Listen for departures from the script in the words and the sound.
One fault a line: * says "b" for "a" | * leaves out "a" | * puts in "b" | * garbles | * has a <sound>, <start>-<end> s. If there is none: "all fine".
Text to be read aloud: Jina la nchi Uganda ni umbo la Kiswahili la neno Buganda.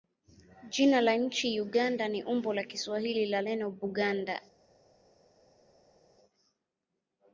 all fine